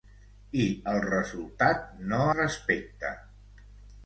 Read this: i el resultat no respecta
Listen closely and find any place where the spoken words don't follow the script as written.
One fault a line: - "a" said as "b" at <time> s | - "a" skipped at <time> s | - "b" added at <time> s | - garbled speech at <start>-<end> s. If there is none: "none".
none